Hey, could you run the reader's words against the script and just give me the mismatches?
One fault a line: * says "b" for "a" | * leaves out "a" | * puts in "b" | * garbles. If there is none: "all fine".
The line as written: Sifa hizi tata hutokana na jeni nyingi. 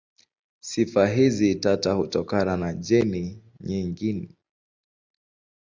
all fine